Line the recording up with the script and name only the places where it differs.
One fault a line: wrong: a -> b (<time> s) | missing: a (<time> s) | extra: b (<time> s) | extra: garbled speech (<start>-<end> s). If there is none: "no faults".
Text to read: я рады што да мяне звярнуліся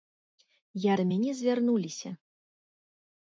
missing: рады што (0.9 s)